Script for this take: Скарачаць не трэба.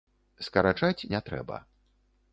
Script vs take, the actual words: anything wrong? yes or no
no